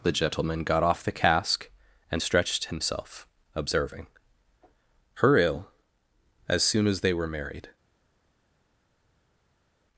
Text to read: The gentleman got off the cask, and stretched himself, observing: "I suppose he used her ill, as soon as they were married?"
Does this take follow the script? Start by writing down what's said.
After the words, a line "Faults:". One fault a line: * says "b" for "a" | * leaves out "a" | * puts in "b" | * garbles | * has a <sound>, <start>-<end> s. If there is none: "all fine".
The gentleman got off the cask, and stretched himself, observing: "her ill, as soon as they were married?"
Faults:
* leaves out "I suppose he used"